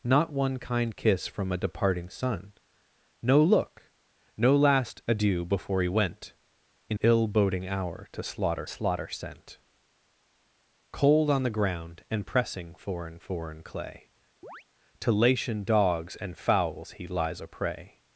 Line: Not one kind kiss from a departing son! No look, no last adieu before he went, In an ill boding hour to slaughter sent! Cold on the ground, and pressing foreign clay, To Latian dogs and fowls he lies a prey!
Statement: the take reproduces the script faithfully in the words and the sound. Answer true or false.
false